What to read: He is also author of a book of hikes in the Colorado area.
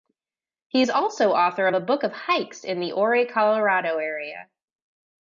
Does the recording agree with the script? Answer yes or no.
no